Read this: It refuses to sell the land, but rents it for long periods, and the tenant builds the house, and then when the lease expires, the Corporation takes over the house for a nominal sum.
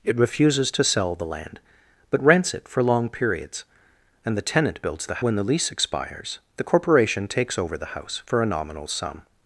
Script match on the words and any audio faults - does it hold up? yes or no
no